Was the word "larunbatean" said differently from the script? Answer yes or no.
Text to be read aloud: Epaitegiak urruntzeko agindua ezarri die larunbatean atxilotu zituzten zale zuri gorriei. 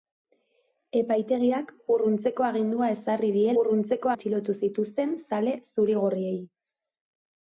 yes